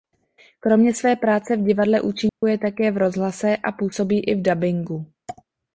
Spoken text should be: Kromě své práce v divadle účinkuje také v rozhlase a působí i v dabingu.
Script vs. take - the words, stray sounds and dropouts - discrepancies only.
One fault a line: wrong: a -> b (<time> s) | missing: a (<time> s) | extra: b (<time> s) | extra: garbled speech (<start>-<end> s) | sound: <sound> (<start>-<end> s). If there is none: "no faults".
sound: dropout (2.3-2.4 s)